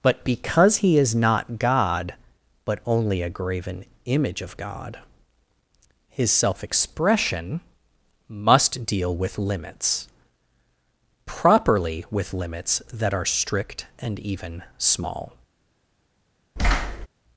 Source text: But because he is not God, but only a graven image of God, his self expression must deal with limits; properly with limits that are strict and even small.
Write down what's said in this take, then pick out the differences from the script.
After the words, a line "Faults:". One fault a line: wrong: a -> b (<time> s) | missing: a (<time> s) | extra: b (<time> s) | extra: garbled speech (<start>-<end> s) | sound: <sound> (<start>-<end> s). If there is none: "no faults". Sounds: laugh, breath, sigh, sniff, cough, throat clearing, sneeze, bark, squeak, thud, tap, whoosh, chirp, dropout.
But because he is not God, but only a graven image of God, his self expression must deal with limits; properly with limits that are strict and even small.
Faults:
sound: thud (16.6-17.1 s)